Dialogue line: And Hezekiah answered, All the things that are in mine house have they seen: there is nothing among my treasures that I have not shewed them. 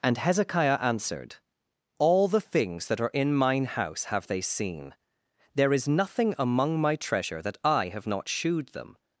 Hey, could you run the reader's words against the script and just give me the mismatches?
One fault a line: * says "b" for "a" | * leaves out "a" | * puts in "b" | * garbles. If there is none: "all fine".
* says "treasure" for "treasures"